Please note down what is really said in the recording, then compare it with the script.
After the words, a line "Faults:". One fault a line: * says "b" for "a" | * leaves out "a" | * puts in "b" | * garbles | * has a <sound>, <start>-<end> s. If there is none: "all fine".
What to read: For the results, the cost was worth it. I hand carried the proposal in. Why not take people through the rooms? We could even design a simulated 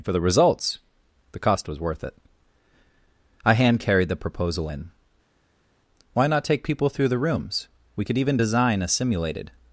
For the results, the cost was worth it. I hand carried the proposal in. Why not take people through the rooms? We could even design a simulated
Faults:
all fine